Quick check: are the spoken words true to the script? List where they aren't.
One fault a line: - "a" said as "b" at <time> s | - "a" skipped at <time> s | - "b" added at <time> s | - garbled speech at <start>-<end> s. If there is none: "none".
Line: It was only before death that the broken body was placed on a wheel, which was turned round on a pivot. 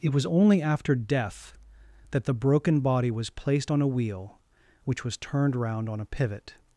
- "before" said as "after" at 0.6 s